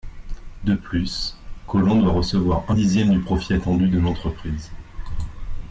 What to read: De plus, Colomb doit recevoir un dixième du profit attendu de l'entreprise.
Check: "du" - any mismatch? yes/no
no